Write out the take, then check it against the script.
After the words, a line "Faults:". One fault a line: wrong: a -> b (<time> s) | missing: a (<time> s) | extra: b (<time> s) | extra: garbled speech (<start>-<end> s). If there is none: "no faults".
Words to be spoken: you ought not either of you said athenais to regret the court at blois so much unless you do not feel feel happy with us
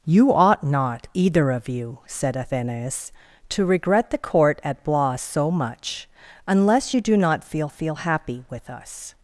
you ought not either of you said athenais to regret the court at blois so much unless you do not feel feel happy with us
Faults:
no faults